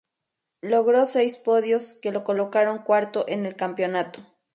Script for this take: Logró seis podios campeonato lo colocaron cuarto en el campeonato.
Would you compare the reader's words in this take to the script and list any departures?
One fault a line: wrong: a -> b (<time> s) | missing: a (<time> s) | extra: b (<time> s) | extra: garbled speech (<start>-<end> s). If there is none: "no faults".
wrong: campeonato -> que (1.9 s)